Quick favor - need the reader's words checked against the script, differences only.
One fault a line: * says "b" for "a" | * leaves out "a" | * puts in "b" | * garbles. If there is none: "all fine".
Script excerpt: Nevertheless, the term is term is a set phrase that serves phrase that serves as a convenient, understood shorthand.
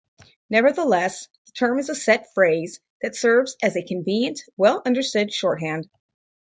* leaves out "term is"
* leaves out "phrase that serves"
* puts in "well"